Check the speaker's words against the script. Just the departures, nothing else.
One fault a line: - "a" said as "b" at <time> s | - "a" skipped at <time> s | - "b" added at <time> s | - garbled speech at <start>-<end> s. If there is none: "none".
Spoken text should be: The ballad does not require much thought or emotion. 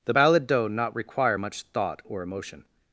- "does" said as "doe" at 0.5 s